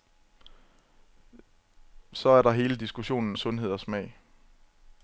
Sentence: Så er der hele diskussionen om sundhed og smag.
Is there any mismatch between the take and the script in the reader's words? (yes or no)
yes